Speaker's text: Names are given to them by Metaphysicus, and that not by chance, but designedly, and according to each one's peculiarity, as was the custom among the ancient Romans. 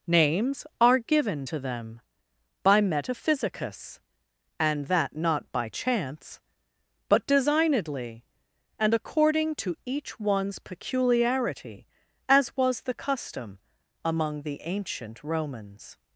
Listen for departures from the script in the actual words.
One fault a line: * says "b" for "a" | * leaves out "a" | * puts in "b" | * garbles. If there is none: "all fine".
all fine